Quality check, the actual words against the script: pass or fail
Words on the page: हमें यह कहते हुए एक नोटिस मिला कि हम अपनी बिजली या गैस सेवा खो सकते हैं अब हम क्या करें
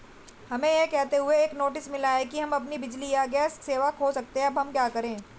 pass